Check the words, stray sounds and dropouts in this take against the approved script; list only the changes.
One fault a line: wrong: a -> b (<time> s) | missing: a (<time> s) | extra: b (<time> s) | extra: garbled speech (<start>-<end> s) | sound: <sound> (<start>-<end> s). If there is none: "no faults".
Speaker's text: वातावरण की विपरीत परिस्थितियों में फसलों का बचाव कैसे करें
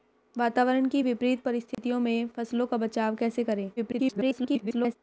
sound: dropout (1.7-1.8 s)
extra: garbled speech (3.8-5.0 s)